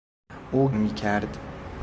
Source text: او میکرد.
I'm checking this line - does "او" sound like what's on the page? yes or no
yes